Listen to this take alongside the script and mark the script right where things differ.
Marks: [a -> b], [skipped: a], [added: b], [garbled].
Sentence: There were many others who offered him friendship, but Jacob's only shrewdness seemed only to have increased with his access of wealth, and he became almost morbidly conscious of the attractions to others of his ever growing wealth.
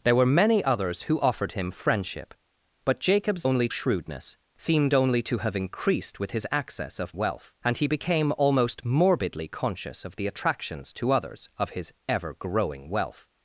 There were many others who offered him friendship, but Jacob's only shrewdness seemed only to have increased with his access of wealth, and he became almost morbidly conscious of the attractions to others of his ever growing wealth.